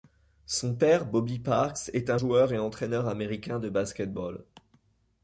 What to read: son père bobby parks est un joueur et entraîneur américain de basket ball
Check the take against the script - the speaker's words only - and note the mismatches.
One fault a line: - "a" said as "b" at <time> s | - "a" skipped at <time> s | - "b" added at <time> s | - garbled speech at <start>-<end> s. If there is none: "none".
none